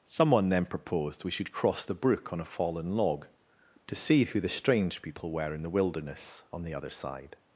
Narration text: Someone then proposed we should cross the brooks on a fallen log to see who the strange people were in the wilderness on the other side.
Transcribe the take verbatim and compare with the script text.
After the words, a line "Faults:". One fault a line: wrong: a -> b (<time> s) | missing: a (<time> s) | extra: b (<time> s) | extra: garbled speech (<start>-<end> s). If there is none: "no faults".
Someone then proposed we should cross the brook on a fallen log to see who the strange people were in the wilderness on the other side.
Faults:
wrong: brooks -> brook (1.9 s)